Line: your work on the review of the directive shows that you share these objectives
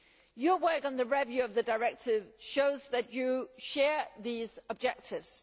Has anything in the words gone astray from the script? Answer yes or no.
no